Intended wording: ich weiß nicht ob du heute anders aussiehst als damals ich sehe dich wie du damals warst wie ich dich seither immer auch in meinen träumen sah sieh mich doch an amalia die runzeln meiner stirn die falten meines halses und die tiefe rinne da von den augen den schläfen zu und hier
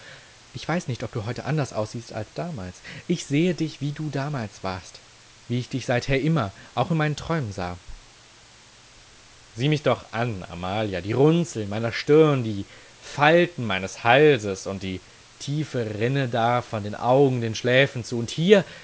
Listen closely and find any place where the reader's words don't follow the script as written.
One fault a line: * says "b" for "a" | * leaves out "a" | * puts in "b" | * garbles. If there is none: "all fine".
all fine